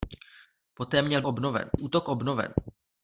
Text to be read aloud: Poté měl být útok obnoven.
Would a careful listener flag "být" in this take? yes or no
yes